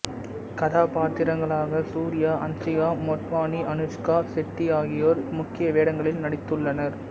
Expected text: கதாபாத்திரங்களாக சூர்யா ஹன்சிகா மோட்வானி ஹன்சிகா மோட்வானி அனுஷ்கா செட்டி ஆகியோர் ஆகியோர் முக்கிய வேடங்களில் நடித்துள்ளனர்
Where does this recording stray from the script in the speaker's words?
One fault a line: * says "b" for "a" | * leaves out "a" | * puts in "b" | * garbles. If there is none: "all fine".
* leaves out "ஹன்சிகா மோட்வானி"
* leaves out "ஆகியோர்"